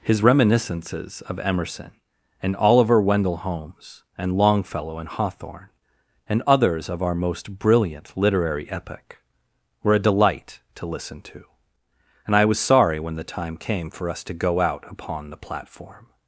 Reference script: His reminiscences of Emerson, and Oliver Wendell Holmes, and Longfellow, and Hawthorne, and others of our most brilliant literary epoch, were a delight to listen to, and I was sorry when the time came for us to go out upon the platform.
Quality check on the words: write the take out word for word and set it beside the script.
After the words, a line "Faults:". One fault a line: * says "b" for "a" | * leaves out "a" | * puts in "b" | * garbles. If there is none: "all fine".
His reminiscences of Emerson, and Oliver Wendell Holmes, and Longfellow, and Hawthorne, and others of our most brilliant literary epoch, were a delight to listen to, and I was sorry when the time came for us to go out upon the platform.
Faults:
all fine